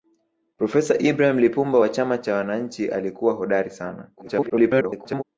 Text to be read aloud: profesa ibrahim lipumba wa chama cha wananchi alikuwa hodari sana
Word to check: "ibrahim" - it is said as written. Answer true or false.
true